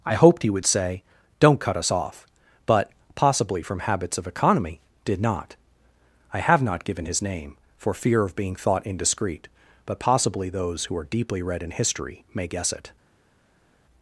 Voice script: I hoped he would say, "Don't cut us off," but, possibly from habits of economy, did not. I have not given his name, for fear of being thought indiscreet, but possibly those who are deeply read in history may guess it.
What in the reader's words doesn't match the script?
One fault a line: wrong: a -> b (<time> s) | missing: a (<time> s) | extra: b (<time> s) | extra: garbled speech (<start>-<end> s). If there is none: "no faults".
no faults